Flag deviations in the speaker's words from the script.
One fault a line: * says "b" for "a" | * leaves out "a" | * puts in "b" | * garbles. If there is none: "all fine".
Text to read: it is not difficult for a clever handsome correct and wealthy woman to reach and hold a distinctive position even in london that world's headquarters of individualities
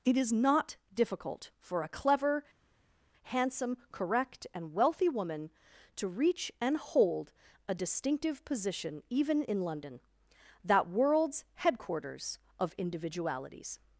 all fine